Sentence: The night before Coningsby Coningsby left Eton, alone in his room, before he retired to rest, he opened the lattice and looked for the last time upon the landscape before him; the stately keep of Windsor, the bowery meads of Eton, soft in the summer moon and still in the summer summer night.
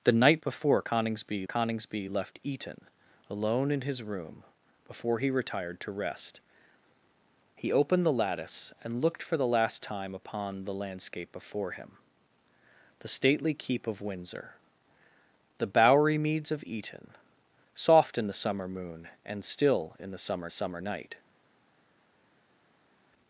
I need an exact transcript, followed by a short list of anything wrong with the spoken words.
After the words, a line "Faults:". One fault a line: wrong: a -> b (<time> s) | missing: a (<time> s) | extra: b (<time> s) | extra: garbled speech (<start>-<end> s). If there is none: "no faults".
The night before Coningsby Coningsby left Eton, alone in his room, before he retired to rest, he opened the lattice and looked for the last time upon the landscape before him; the stately keep of Windsor, the bowery meads of Eton, soft in the summer moon and still in the summer summer night.
Faults:
no faults